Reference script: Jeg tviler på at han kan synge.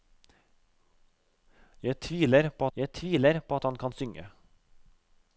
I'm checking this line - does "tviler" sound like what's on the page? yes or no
yes